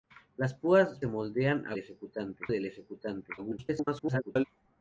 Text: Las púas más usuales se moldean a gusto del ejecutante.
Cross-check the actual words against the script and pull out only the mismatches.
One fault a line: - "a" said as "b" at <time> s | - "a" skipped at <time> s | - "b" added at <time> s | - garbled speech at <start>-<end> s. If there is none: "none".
- "más usuales" skipped at 1.0 s
- "gusto" said as "ejecutante" at 1.8 s
- garbled speech at 3.4-4.4 s